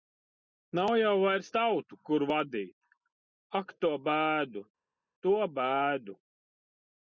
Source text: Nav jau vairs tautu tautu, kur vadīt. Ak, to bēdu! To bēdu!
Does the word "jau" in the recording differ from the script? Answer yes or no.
no